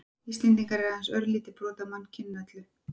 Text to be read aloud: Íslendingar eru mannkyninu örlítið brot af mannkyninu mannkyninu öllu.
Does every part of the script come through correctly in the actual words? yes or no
no